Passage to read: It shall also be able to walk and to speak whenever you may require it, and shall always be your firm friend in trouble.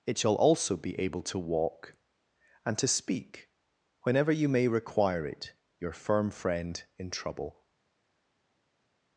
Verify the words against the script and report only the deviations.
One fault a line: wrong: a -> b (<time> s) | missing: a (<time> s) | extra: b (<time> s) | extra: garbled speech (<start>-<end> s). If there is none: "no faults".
missing: and shall always be (5.5 s)